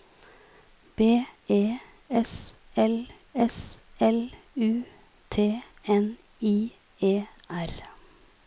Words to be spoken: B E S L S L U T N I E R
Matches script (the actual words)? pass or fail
pass